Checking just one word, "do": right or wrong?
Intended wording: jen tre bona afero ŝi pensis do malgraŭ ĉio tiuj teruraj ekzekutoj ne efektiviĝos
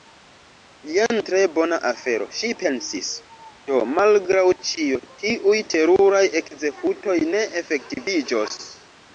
right